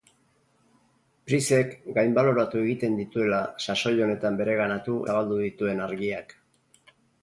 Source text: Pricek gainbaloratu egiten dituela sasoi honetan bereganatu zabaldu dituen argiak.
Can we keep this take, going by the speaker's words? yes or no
yes